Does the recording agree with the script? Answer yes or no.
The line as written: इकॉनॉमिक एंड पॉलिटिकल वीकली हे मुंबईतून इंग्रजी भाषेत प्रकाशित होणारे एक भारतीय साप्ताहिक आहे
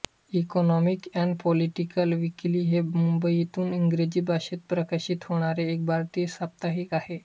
yes